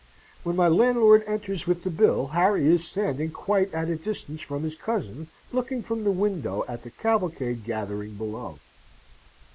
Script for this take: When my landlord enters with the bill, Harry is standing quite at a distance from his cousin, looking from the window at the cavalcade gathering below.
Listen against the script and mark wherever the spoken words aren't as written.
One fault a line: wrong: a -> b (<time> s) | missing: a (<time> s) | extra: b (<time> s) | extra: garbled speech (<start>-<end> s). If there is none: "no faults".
no faults